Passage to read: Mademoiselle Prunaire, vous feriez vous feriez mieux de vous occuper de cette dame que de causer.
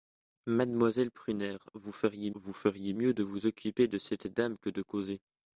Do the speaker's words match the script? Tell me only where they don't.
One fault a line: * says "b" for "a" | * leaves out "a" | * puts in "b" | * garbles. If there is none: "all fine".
all fine